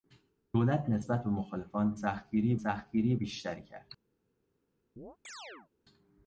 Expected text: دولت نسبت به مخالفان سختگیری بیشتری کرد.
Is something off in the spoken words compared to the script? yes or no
yes